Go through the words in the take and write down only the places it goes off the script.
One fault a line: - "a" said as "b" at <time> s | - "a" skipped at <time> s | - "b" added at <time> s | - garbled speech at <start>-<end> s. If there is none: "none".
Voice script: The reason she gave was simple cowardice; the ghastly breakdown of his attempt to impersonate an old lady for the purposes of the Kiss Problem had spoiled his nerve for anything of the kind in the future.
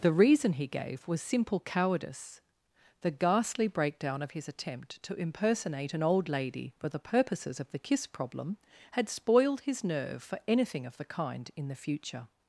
- "she" said as "he" at 0.5 s